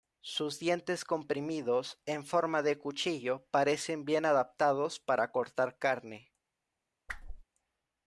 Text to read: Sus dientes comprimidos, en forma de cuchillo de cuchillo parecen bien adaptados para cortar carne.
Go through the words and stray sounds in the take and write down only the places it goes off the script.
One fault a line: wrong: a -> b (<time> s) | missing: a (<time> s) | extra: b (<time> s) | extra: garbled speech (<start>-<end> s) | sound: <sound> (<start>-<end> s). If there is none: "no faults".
missing: de cuchillo (3.5 s)
sound: whoosh (7.1-7.4 s)